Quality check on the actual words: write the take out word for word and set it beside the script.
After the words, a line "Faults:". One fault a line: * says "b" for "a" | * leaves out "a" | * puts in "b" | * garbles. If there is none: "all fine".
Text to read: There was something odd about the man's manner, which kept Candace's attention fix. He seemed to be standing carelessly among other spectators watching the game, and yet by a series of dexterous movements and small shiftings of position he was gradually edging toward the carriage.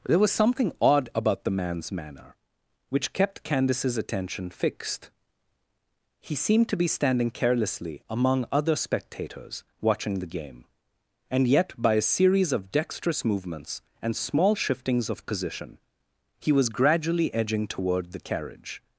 There was something odd about the man's manner, which kept Candace's attention fixed. He seemed to be standing carelessly among other spectators watching the game, and yet by a series of dexterous movements and small shiftings of position he was gradually edging toward the carriage.
Faults:
* says "fixed" for "fix"